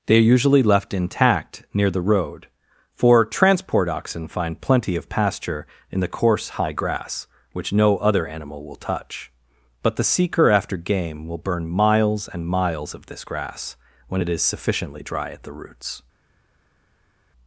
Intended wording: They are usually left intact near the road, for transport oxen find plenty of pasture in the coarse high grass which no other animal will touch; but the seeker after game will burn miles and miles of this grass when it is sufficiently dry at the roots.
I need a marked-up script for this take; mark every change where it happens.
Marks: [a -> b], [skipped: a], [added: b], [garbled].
They are usually left intact near the road, for transport oxen find plenty of pasture in the coarse high grass which no other animal will touch; but the seeker after game will burn miles and miles of this grass when it is sufficiently dry at the roots.